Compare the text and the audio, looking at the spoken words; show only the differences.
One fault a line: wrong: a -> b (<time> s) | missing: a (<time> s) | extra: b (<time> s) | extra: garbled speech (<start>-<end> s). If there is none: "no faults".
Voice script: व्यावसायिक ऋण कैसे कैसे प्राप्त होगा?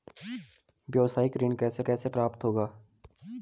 no faults